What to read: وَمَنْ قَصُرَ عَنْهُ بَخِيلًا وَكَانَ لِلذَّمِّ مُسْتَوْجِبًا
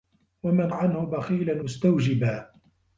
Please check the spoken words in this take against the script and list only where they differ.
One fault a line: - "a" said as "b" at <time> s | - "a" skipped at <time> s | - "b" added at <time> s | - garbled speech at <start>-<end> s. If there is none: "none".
- "قَصُرَ" skipped at 0.7 s
- "وَكَانَ لِلذَّمِّ" skipped at 1.6 s